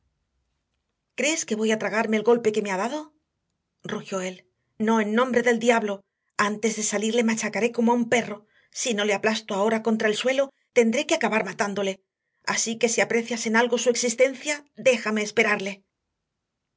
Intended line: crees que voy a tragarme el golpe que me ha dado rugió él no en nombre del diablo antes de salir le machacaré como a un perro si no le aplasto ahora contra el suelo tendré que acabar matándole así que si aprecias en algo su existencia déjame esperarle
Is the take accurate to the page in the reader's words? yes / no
yes